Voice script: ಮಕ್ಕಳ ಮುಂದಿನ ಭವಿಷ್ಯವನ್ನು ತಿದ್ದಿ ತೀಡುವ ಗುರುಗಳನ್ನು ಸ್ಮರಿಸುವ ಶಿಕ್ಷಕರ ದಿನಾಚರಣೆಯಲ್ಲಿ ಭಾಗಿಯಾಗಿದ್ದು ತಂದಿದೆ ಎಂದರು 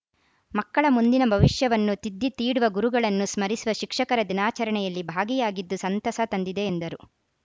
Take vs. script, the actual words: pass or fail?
fail